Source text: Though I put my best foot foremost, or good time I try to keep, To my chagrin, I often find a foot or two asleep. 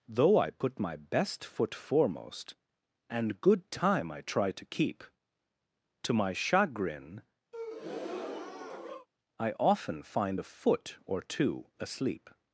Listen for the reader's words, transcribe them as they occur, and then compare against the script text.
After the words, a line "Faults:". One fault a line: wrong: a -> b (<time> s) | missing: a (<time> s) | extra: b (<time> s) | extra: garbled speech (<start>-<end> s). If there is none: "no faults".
Though I put my best foot foremost, and good time I try to keep, To my chagrin, I often find a foot or two asleep.
Faults:
wrong: or -> and (3.1 s)